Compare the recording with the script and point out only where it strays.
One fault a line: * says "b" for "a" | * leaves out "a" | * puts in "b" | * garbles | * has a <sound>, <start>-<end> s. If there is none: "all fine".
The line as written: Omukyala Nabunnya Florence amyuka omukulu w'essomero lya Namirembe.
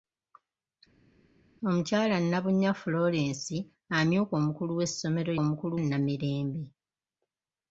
* says "omukulu" for "lya"